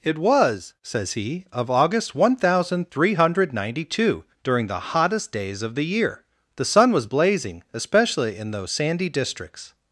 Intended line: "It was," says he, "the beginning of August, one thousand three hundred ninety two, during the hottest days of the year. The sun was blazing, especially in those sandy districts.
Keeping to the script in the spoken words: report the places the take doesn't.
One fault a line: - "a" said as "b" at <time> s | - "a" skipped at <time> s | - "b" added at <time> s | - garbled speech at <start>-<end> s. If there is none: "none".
- "the beginning" skipped at 1.4 s